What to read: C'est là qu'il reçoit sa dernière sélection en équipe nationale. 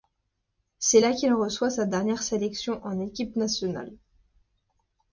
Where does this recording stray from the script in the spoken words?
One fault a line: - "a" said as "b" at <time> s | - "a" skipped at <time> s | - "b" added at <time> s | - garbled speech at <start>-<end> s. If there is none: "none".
none